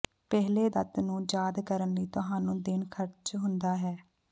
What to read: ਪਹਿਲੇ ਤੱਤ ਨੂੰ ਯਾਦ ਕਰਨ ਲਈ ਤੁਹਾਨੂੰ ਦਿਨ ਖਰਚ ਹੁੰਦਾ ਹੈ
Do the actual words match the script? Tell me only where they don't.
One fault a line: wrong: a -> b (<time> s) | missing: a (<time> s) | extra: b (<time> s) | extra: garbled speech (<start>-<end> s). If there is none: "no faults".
no faults